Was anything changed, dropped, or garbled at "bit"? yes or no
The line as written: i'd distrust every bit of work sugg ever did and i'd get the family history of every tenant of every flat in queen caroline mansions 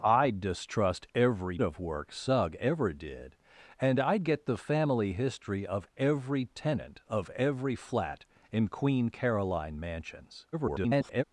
yes